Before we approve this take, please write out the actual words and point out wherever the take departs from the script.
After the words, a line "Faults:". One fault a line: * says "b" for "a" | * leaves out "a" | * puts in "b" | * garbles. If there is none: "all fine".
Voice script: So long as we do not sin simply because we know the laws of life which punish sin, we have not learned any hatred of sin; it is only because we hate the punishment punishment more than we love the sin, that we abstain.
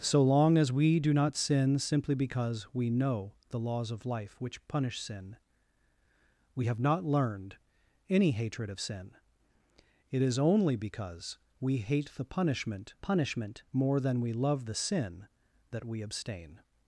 So long as we do not sin simply because we know the laws of life which punish sin, we have not learned any hatred of sin; it is only because we hate the punishment punishment more than we love the sin, that we abstain.
Faults:
all fine